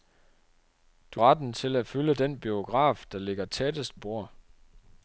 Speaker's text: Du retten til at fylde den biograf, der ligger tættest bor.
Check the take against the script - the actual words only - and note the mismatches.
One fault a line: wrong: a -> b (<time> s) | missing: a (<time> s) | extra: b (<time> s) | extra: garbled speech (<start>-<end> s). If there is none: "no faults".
no faults